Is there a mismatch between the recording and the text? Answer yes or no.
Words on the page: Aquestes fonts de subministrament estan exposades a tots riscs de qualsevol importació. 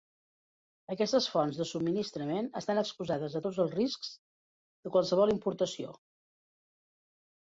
yes